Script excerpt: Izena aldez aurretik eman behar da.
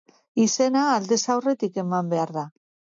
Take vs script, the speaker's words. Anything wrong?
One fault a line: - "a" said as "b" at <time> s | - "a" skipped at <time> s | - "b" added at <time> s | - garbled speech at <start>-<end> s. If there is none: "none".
none